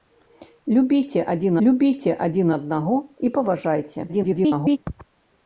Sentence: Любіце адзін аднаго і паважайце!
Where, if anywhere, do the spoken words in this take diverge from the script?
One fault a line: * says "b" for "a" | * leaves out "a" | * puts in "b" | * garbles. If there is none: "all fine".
* puts in "любіце адзін"
* garbles